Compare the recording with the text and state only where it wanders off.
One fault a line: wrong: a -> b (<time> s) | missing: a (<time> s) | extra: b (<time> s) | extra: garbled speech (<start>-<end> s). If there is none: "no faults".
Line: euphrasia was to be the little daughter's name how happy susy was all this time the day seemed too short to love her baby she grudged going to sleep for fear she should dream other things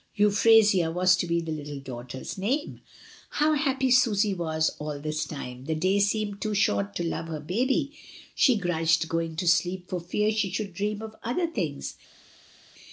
extra: of (11.0 s)